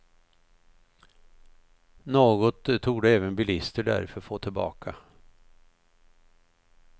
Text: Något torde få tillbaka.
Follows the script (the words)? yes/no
no